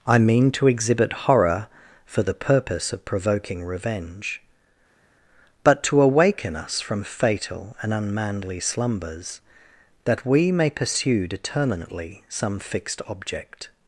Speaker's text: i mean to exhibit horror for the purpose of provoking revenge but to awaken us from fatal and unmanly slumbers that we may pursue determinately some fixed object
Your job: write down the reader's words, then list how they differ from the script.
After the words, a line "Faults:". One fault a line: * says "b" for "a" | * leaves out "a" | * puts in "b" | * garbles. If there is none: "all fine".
i mean to exhibit horror for the purpose of provoking revenge but to awaken us from fatal and unmanly slumbers that we may pursue determinately some fixed object
Faults:
all fine